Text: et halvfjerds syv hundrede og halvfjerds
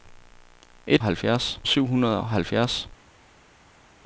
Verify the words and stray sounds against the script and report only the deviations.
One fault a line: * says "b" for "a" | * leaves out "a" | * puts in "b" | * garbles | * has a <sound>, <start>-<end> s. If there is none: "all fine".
all fine